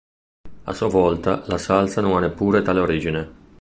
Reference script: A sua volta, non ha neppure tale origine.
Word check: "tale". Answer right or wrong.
right